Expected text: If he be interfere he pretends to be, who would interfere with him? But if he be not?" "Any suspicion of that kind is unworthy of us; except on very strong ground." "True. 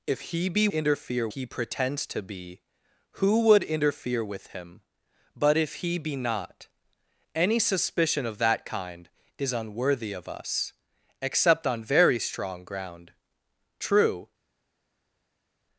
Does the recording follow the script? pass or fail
pass